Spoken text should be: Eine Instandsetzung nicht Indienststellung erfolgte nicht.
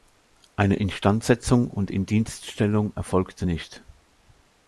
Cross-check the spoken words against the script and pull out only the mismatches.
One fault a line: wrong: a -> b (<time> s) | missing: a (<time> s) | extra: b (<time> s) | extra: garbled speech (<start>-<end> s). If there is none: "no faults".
wrong: nicht -> und (1.7 s)